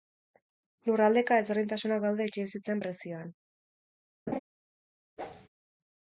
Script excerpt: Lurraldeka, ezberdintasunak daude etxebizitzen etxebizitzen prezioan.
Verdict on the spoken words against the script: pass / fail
fail